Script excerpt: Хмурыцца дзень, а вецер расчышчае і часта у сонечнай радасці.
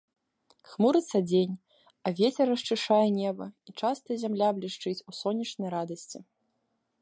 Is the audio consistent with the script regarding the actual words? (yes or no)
no